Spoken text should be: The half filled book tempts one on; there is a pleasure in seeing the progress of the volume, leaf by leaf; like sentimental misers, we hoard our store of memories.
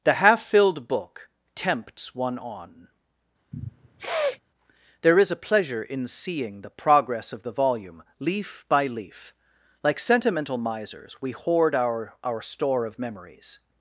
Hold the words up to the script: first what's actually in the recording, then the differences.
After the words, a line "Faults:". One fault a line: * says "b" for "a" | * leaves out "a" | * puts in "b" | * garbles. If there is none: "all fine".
The half filled book tempts one on; there is a pleasure in seeing the progress of the volume, leaf by leaf; like sentimental misers, we hoard our our store of memories.
Faults:
* puts in "our"